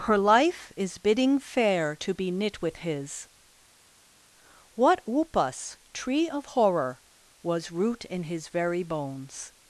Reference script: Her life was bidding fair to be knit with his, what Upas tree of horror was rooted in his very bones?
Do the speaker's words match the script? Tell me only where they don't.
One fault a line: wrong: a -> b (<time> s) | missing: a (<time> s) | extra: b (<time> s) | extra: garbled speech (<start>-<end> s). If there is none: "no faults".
wrong: was -> is (0.8 s)
wrong: rooted -> root (7.7 s)